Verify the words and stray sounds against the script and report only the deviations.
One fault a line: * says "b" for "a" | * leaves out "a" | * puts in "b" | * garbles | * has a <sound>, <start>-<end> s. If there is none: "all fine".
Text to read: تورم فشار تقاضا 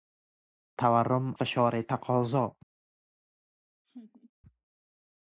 * has a laugh, 3.8-4.3 s